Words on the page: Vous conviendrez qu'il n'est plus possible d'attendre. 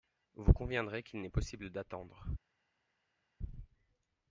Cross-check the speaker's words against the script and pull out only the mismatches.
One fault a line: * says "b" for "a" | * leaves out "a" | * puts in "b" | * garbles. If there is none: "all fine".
* leaves out "plus"